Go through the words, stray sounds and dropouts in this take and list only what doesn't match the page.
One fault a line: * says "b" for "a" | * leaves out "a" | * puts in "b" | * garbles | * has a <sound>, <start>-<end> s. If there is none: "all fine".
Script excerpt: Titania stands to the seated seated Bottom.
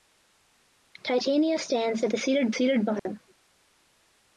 * has a dropout, 3.0-3.1 s